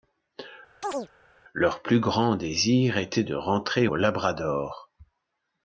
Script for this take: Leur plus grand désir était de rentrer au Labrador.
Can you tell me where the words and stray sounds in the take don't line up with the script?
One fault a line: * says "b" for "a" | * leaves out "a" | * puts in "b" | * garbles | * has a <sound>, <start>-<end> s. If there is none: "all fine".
* has a chirp, 0.8-1.1 s